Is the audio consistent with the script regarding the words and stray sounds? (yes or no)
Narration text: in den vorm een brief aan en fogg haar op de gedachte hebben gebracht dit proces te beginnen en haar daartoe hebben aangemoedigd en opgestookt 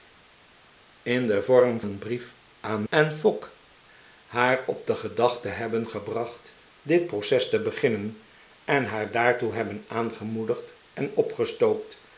yes